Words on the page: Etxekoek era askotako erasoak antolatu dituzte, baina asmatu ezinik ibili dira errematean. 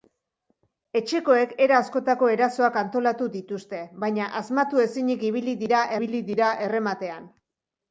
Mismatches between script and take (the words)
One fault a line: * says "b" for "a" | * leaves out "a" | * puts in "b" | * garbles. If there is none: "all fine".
* puts in "ibili dira"